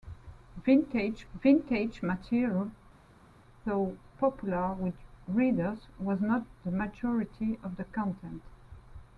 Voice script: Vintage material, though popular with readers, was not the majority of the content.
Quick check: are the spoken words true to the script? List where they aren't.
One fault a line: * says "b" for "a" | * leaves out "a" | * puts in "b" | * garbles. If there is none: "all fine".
* puts in "vintage"